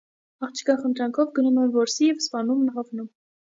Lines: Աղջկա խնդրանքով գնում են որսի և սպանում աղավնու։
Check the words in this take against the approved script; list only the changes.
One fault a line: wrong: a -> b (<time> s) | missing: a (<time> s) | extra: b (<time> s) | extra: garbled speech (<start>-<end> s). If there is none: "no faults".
no faults